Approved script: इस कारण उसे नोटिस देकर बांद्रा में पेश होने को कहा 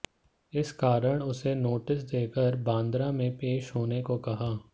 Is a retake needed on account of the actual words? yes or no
no